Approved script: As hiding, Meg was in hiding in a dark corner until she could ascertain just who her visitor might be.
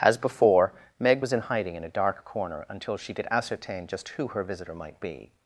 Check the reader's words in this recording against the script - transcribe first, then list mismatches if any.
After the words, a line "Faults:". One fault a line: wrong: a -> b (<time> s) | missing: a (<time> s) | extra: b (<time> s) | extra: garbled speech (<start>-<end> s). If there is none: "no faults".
As before, Meg was in hiding in a dark corner until she could ascertain just who her visitor might be.
Faults:
wrong: hiding -> before (0.2 s)